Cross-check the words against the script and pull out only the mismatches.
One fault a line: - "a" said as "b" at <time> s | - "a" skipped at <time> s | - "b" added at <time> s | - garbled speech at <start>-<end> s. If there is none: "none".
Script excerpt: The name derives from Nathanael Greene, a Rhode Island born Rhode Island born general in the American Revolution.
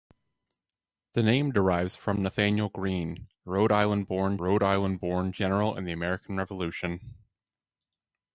none